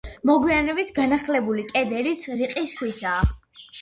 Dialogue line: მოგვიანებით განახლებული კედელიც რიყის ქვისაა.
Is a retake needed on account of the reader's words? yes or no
no